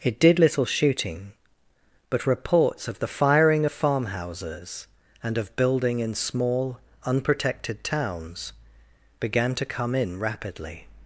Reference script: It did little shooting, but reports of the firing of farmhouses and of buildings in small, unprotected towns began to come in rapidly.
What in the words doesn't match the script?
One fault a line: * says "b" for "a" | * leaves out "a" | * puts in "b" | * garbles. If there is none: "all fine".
* says "building" for "buildings"